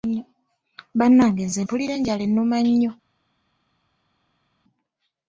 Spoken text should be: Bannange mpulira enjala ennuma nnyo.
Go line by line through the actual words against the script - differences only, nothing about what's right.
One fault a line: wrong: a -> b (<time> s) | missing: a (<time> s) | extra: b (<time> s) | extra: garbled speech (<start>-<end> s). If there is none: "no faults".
extra: nze (1.5 s)